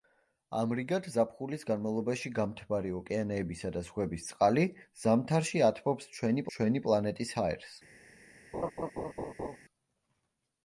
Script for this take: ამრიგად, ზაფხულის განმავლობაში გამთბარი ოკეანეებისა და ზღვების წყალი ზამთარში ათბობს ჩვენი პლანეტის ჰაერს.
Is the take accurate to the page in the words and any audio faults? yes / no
no